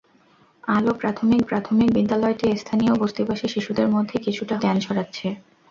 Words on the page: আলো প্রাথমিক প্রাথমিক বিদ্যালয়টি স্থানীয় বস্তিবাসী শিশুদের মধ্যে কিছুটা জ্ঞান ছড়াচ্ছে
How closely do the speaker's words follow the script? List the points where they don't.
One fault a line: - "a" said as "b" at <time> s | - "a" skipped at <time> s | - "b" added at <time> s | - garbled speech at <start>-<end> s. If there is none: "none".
none